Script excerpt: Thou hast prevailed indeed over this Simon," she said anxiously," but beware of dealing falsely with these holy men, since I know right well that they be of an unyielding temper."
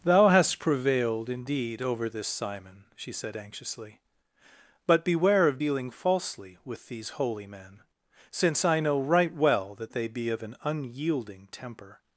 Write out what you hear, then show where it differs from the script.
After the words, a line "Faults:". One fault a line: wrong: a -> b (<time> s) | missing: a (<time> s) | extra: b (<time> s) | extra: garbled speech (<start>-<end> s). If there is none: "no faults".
Thou hast prevailed indeed over this Simon," she said anxiously," but beware of dealing falsely with these holy men, since I know right well that they be of an unyielding temper."
Faults:
no faults